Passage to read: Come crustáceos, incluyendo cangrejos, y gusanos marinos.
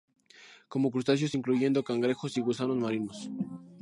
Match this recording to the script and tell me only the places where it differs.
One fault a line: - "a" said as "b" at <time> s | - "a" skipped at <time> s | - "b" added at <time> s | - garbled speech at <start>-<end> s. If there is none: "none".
none